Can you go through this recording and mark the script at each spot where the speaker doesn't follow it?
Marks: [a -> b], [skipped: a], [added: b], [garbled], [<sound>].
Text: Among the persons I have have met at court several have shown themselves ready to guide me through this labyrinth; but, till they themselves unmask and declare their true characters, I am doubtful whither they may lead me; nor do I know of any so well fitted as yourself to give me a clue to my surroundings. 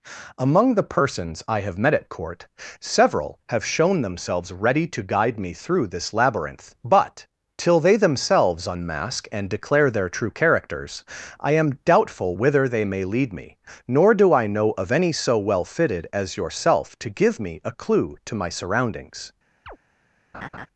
Among the persons I have [skipped: have] met at court several have shown themselves ready to guide me through this labyrinth; but, till they themselves unmask and declare their true characters, I am doubtful whither they may lead me; nor do I know of any so well fitted as yourself to give me a clue to my surroundings. [chirp] [laugh]